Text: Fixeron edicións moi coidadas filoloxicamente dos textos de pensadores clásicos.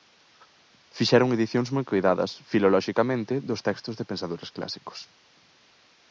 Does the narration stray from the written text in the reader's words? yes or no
no